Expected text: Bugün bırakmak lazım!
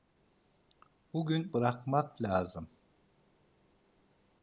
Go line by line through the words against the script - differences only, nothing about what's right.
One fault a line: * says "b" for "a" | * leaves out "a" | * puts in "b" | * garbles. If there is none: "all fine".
all fine